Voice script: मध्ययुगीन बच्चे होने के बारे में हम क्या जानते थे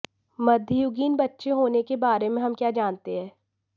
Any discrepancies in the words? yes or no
yes